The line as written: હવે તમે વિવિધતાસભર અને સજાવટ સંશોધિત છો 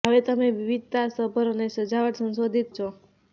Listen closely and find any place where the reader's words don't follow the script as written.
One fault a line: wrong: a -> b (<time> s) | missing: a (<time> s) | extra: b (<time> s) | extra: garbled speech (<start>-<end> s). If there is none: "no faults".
no faults